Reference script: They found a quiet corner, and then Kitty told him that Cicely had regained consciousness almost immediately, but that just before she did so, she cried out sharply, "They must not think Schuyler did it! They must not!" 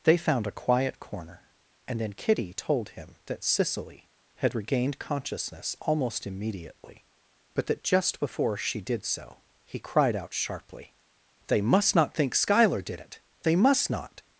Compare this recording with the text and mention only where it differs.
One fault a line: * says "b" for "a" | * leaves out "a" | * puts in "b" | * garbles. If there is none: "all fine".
* says "he" for "she"